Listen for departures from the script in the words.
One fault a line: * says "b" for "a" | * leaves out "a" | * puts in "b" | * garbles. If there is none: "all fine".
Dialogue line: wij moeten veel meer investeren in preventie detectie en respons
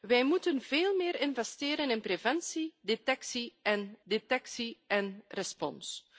* puts in "detectie en"